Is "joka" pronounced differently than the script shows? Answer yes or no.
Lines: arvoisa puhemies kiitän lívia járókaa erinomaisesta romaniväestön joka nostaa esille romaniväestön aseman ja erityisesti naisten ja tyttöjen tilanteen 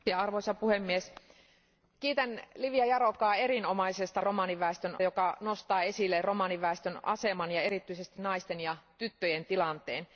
no